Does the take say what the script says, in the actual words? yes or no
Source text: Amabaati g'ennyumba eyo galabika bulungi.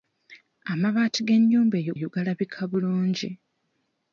no